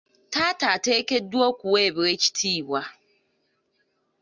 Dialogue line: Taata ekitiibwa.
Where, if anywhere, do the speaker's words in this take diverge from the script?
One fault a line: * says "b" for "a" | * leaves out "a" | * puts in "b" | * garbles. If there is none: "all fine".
* puts in "ateekeddwa okuweebwa"